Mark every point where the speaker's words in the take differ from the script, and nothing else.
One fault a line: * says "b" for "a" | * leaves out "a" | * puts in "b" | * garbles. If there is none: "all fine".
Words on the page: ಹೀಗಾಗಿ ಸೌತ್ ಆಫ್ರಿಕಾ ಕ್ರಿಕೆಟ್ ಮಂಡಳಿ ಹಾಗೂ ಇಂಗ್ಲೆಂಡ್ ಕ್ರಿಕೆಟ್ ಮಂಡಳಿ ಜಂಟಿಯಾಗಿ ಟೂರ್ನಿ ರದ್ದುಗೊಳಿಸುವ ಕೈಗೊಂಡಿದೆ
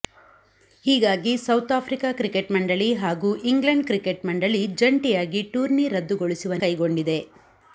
all fine